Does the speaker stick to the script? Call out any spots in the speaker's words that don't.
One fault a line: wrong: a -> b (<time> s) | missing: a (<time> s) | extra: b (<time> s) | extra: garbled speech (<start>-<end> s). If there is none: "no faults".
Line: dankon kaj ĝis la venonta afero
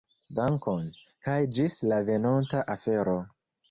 no faults